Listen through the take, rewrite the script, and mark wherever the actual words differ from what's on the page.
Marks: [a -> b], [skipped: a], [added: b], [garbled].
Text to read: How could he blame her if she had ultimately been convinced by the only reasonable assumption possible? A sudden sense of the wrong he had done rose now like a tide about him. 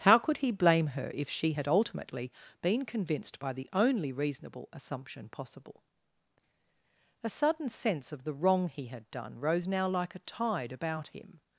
How could he blame her if she had ultimately been convinced by the only reasonable assumption possible? A sudden sense of the wrong he had done rose now like a tide about him.